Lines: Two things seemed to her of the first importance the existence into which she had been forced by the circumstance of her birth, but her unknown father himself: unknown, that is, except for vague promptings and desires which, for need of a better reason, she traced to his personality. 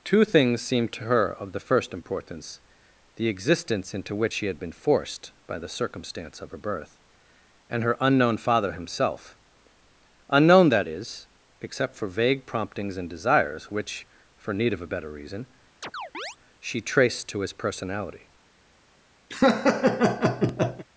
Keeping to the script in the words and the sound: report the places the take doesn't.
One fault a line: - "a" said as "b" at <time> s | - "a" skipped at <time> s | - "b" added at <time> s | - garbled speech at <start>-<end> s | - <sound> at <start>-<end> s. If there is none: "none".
- "but" said as "and" at 7.7 s
- chirp at 15.8-16.4 s
- laugh at 19.3-20.9 s